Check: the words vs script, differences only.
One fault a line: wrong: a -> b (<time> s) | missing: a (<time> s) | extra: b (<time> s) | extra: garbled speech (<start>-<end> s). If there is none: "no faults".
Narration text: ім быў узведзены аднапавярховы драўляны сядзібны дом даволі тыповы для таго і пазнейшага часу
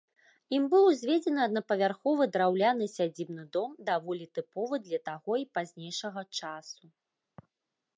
no faults